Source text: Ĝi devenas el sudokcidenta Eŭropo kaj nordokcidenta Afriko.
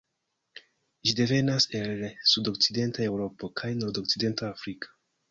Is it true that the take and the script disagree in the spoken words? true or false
false